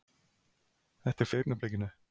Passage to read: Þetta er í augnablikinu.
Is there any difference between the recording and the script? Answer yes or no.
no